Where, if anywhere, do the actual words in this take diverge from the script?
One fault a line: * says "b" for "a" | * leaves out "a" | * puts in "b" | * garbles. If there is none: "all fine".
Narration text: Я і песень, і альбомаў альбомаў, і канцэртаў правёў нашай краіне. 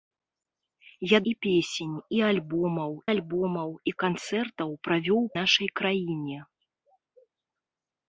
all fine